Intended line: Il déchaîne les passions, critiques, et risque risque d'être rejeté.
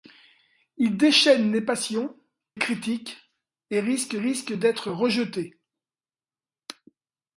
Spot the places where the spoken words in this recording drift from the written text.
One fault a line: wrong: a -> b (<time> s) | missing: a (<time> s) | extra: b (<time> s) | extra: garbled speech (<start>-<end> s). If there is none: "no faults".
no faults